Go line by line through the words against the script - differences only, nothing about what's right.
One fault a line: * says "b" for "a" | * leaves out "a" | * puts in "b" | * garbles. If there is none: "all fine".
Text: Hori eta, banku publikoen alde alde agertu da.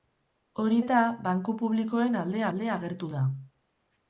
all fine